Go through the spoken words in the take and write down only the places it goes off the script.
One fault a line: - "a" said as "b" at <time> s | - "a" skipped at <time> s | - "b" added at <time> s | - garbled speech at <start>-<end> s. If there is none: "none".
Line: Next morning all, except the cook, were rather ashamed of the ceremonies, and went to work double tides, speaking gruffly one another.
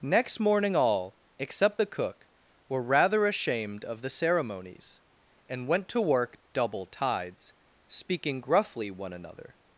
none